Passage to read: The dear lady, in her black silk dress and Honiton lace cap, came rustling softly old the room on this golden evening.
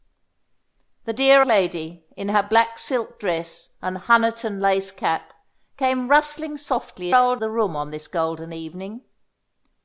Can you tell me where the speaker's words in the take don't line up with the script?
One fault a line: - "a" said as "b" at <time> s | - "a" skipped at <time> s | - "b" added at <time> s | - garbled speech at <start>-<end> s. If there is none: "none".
none